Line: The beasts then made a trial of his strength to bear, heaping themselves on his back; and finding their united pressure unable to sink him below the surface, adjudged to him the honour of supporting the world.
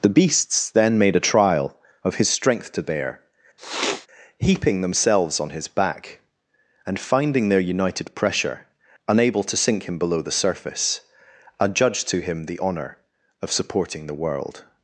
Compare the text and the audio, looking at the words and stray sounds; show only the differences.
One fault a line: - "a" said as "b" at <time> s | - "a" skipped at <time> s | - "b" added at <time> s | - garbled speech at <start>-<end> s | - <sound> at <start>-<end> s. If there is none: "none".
- sniff at 3.6-4.1 s